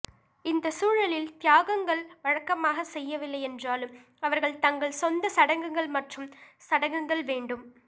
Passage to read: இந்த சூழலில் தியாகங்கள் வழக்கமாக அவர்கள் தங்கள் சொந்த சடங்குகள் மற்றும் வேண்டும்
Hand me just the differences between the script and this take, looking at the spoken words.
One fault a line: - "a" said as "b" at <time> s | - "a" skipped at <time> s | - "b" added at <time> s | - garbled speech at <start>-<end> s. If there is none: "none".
- "செய்யவில்லை என்றாலும்" added at 2.9 s
- "சடங்குகள்" added at 6.7 s